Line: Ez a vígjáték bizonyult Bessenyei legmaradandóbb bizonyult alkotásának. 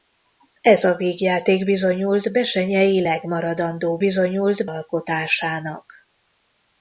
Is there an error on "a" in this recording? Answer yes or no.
no